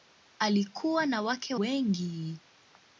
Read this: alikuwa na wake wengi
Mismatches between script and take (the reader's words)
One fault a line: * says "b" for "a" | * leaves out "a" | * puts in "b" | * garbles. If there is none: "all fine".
all fine